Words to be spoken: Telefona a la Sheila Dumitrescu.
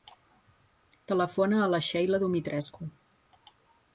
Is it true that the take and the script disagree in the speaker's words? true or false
false